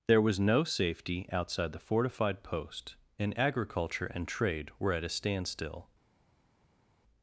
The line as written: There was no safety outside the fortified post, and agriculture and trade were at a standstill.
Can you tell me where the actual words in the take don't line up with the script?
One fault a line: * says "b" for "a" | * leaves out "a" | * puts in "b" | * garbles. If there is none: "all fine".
all fine